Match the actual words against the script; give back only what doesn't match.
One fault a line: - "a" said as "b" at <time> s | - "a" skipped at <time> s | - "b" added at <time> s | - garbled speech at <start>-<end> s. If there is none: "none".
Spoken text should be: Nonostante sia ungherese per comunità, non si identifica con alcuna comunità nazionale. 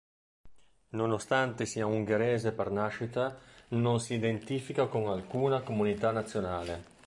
- "comunità" said as "nascita" at 2.7 s